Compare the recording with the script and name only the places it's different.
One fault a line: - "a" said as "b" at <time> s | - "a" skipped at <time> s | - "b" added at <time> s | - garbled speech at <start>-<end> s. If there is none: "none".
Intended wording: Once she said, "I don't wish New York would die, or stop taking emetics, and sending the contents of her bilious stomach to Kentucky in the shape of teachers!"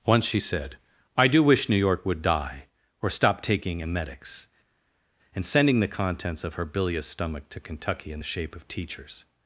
- "don't" said as "do" at 1.3 s